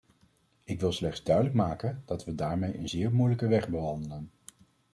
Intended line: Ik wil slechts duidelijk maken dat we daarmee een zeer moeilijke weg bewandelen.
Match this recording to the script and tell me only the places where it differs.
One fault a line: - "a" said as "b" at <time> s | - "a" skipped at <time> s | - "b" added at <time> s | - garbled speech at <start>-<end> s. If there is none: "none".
none